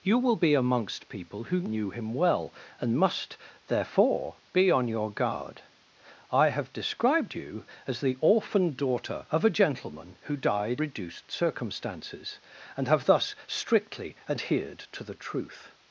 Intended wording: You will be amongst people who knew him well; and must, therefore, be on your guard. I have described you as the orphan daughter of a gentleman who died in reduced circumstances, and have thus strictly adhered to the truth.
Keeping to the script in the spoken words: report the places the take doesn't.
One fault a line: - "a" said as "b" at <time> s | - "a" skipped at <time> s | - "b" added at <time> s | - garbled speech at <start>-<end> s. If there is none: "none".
- "in" skipped at 10.8 s